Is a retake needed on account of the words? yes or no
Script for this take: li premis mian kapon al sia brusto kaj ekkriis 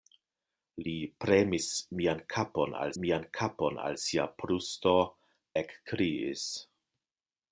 yes